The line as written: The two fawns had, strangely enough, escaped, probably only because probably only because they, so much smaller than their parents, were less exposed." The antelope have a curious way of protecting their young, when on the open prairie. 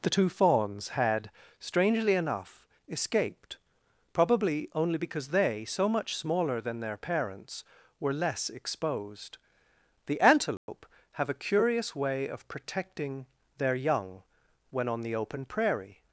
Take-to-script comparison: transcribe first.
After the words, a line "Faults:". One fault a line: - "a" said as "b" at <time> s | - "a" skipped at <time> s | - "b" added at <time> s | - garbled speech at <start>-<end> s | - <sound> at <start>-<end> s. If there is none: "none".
The two fawns had, strangely enough, escaped, probably only because they, so much smaller than their parents, were less exposed." The antelope have a curious way of protecting their young, when on the open prairie.
Faults:
- "probably only because" skipped at 5.3 s
- dropout at 10.6-10.7 s